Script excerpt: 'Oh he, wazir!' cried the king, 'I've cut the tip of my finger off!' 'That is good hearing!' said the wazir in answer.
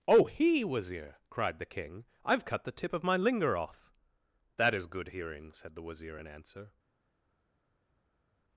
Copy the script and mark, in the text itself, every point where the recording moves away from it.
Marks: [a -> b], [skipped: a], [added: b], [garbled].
'Oh he, wazir!' cried the king, 'I've cut the tip of my [finger -> linger] off!' 'That is good hearing!' said the wazir in answer.